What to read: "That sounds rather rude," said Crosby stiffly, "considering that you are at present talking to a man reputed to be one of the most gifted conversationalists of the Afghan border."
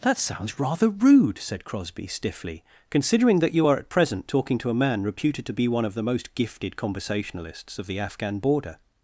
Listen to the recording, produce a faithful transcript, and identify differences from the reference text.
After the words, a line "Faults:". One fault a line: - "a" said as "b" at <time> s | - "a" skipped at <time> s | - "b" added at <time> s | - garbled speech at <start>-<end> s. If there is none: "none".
"That sounds rather rude," said Crosby stiffly, "considering that you are at present talking to a man reputed to be one of the most gifted conversationalists of the Afghan border."
Faults:
none